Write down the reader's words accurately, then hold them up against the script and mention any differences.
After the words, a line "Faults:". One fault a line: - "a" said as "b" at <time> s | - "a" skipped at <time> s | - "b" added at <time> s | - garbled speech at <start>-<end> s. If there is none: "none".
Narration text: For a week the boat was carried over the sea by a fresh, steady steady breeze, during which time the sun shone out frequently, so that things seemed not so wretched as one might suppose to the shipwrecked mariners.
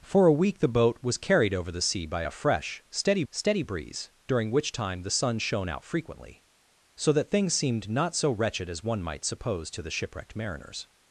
For a week the boat was carried over the sea by a fresh, steady steady breeze, during which time the sun shone out frequently, so that things seemed not so wretched as one might suppose to the shipwrecked mariners.
Faults:
none